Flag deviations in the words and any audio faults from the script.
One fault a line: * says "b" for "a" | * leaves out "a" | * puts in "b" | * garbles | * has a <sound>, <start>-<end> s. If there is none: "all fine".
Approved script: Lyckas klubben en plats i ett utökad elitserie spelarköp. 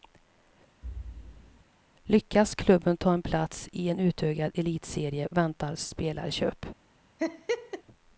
* has a thud, 0.8-1.6 s
* puts in "ta"
* says "en" for "ett"
* puts in "väntar"
* has a laugh, 7.2-7.8 s